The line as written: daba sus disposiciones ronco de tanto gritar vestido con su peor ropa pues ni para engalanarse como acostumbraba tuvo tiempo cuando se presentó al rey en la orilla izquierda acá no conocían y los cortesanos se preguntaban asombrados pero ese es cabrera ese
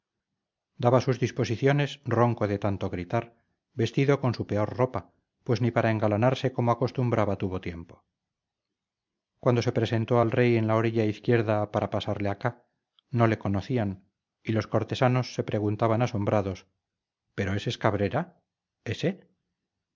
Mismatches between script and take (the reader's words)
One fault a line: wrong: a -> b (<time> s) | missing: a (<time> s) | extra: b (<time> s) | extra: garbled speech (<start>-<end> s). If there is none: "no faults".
extra: para pasarle (11.7 s)
extra: le (13.3 s)